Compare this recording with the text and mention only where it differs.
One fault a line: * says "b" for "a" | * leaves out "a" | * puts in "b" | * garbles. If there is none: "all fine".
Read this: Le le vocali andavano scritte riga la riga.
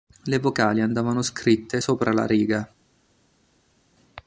* leaves out "le"
* says "sopra" for "riga"